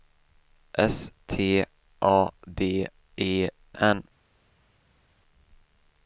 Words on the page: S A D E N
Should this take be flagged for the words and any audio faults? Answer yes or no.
yes